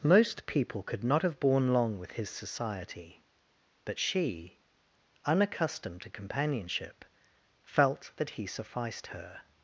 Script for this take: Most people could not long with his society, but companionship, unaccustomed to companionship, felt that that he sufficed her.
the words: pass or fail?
fail